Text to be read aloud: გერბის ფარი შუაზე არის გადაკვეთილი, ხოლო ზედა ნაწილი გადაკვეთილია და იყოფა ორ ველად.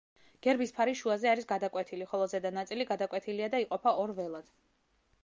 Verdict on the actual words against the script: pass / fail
pass